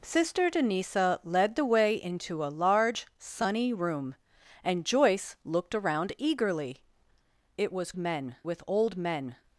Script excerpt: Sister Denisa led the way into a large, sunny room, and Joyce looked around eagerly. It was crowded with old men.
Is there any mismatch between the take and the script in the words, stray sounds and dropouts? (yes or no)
yes